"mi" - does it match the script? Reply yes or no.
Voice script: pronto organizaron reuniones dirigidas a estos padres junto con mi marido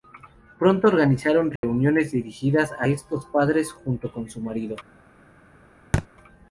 no